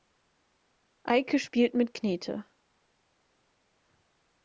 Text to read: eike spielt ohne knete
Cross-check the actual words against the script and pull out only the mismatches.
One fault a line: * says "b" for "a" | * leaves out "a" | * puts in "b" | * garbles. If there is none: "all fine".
* says "mit" for "ohne"